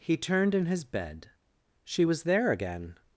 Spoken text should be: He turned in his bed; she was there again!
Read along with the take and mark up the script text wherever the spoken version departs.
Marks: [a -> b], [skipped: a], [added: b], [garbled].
He turned in his bed; she was there again!